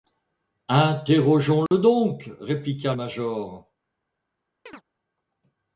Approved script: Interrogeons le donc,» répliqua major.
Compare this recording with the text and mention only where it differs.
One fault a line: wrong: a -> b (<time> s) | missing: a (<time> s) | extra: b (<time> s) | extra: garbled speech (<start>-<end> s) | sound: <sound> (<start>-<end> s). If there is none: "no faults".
sound: dropout (1.7-1.7 s)
sound: chirp (4.7-4.8 s)